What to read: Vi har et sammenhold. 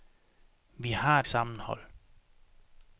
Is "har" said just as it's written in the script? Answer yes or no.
yes